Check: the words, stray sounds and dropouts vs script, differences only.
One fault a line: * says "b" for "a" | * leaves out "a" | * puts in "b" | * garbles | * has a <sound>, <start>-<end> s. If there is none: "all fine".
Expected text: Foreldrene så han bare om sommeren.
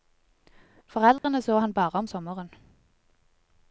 * has a dropout, 1.2-1.2 s